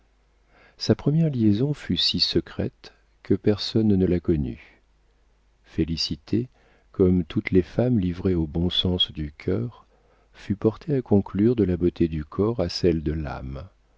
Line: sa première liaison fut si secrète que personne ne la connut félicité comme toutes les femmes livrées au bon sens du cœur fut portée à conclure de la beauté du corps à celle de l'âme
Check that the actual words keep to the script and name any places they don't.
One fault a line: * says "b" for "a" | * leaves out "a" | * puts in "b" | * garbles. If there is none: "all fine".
all fine